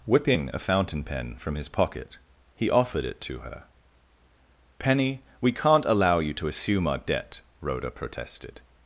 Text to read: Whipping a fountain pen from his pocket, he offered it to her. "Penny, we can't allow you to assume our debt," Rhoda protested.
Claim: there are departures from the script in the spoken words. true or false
false